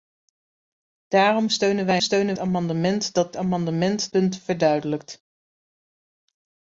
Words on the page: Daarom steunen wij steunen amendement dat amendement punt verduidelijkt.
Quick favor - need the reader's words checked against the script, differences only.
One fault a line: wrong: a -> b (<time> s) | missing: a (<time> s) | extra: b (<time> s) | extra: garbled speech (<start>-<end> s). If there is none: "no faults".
no faults